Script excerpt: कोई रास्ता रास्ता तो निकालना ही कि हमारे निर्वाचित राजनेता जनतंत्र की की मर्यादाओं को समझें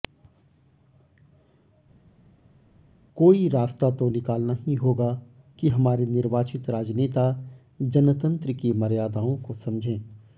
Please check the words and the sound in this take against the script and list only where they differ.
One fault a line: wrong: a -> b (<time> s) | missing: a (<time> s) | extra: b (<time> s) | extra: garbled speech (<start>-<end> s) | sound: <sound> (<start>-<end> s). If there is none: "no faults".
missing: रास्ता (3.9 s)
extra: होगा (4.7 s)
missing: की (8.7 s)